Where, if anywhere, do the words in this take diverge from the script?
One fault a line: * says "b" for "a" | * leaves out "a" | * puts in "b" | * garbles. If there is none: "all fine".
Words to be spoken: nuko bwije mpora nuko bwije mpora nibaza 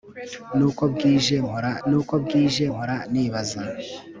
all fine